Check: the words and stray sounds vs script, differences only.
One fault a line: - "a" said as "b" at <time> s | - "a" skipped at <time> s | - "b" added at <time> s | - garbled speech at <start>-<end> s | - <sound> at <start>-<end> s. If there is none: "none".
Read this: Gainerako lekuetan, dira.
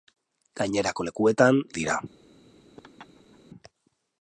- laugh at 2.8-3.4 s